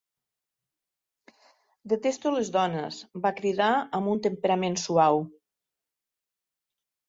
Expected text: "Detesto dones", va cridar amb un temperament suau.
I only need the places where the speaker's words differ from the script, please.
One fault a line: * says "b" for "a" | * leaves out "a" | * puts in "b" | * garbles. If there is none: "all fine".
* puts in "les"